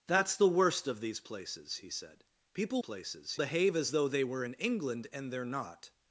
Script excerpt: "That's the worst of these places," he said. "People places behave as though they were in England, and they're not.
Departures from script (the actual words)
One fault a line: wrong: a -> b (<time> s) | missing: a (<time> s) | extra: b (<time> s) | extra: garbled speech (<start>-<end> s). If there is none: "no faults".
no faults